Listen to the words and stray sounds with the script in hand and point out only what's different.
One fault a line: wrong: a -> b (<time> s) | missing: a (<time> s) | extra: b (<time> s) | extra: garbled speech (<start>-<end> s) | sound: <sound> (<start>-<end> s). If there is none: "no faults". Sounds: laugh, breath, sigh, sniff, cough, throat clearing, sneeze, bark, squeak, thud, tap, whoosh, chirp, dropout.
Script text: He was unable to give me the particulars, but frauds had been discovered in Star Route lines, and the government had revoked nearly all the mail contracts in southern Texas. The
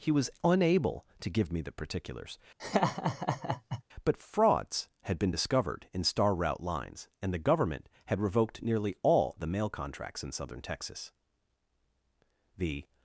sound: laugh (2.6-3.8 s)